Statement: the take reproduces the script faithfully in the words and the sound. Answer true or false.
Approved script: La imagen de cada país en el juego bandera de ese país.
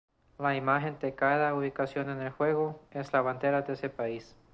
false